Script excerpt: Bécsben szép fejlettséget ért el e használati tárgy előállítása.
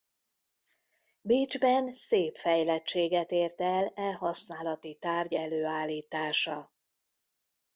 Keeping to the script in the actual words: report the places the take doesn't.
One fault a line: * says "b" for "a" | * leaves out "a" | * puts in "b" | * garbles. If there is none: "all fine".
all fine